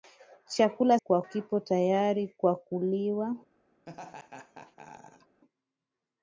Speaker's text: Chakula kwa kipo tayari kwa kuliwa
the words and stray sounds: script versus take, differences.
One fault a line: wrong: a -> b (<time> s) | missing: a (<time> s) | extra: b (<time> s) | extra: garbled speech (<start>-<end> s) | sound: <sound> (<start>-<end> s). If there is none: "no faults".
sound: laugh (3.9-5.4 s)